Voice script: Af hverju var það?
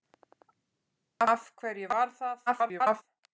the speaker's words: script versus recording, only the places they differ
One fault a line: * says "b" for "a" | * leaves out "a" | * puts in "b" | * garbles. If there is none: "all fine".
* garbles